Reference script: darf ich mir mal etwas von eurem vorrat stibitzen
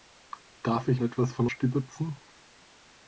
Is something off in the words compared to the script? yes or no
yes